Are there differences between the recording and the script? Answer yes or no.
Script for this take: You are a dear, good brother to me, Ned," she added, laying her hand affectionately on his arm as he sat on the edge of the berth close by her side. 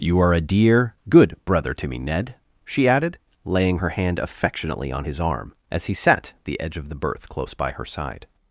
yes